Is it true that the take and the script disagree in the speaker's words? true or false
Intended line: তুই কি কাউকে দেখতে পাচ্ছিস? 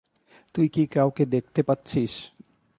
false